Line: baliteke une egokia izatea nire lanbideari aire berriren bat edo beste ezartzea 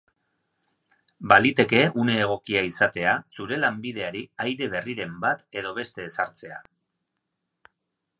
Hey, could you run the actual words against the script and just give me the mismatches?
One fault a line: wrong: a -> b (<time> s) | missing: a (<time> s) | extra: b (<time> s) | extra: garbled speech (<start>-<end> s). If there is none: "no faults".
wrong: nire -> zure (3.4 s)